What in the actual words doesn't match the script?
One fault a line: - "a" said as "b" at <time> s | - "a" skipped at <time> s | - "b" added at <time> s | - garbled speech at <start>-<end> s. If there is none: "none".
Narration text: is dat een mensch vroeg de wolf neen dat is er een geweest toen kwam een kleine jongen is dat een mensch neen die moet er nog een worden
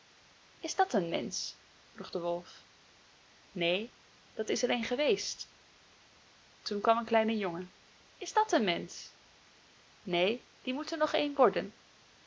none